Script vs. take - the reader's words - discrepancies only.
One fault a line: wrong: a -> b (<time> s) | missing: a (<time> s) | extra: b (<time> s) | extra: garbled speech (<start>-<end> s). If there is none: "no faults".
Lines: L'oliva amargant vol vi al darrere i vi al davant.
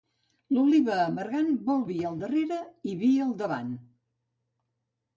no faults